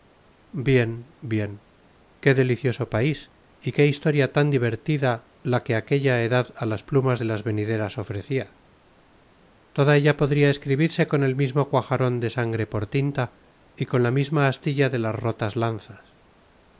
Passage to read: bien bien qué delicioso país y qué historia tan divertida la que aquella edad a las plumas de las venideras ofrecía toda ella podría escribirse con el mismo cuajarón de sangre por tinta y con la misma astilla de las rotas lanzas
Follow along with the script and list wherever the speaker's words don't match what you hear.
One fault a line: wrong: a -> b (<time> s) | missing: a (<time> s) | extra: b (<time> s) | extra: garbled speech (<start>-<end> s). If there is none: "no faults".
no faults